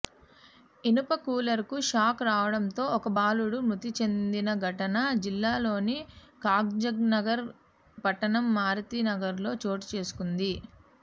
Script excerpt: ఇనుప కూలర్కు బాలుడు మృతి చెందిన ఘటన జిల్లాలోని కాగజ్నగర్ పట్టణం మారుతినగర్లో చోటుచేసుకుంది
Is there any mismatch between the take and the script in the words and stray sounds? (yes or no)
yes